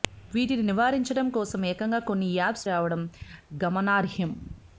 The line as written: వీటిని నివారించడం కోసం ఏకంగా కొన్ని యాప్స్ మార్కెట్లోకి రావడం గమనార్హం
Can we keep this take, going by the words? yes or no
no